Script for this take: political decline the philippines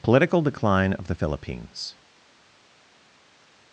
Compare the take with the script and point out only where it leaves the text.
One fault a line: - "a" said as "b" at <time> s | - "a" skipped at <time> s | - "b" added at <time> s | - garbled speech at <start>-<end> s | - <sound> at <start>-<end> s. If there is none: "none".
- "of" added at 0.9 s